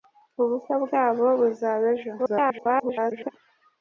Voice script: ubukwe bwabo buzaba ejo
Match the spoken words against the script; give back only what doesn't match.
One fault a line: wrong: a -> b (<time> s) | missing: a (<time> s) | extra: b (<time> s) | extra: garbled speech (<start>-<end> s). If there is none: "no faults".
extra: garbled speech (2.2-3.3 s)